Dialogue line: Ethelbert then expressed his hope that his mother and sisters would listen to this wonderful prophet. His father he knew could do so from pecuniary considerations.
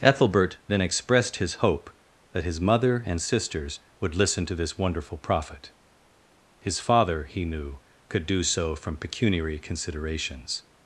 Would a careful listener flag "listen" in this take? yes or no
no